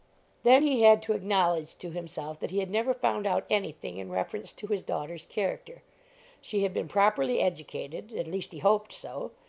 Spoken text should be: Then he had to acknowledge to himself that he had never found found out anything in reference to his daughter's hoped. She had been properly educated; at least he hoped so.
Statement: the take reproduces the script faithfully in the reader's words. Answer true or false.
false